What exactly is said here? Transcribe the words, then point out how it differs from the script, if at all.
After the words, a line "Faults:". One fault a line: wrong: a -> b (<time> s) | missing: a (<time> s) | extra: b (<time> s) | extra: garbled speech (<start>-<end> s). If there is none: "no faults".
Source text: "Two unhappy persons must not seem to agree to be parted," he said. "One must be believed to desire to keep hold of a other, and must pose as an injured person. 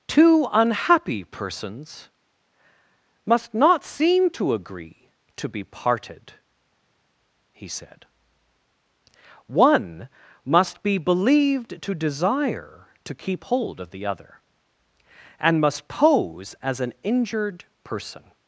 "Two unhappy persons must not seem to agree to be parted," he said. "One must be believed to desire to keep hold of the other, and must pose as an injured person.
Faults:
wrong: a -> the (13.9 s)